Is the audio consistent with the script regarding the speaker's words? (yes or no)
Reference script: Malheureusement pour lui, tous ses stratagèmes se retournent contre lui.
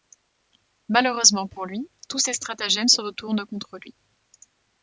yes